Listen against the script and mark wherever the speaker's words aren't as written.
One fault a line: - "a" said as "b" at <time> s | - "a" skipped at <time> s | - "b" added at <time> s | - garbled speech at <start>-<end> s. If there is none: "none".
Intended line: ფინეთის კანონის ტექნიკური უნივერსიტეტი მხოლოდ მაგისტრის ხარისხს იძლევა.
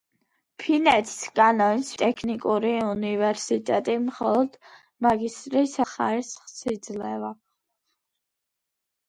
none